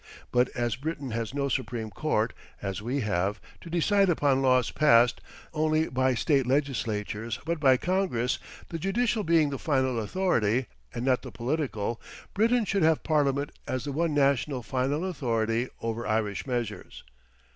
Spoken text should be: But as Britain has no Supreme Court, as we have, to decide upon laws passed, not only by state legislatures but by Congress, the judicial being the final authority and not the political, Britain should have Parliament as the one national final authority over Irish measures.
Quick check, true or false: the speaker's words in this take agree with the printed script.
false